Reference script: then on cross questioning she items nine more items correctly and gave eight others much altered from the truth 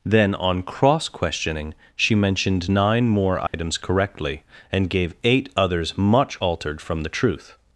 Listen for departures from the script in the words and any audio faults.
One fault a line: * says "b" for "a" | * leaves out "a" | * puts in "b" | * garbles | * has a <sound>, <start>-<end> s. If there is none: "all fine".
* says "mentioned" for "items"
* has a dropout, 3.5-3.5 s